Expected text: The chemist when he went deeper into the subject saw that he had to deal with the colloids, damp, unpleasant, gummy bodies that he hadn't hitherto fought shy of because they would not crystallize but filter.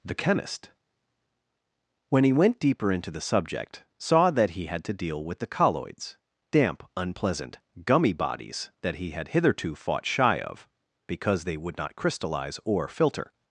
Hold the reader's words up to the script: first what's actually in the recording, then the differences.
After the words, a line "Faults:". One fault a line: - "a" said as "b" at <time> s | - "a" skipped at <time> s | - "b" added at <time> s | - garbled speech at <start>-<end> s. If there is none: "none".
The chemist when he went deeper into the subject saw that he had to deal with the colloids, damp, unpleasant, gummy bodies that he had hitherto fought shy of because they would not crystallize or filter.
Faults:
- "hadn't" said as "had" at 9.1 s
- "but" said as "or" at 12.7 s